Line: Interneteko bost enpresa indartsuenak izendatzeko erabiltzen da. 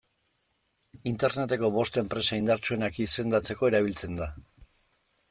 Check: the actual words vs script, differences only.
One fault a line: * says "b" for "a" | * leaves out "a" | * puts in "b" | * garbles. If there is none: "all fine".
all fine